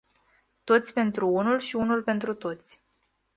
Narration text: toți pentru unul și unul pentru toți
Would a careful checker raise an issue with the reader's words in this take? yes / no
no